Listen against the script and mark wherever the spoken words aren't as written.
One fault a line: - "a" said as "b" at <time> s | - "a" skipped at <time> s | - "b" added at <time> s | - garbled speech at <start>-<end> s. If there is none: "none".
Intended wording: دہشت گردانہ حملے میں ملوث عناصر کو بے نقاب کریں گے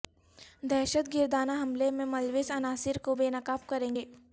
none